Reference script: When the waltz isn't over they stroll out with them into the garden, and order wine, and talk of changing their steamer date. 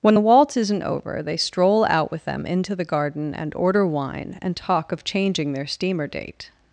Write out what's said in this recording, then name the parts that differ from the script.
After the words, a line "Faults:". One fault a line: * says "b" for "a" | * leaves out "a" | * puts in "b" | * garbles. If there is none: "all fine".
When the waltz isn't over they stroll out with them into the garden, and order wine, and talk of changing their steamer date.
Faults:
all fine